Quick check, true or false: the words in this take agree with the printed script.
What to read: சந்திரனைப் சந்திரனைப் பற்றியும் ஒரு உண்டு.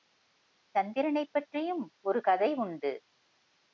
false